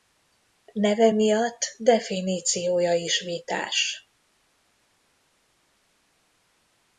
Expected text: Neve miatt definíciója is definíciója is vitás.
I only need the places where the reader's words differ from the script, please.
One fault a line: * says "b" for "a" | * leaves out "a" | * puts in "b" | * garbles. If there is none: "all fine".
* leaves out "definíciója is"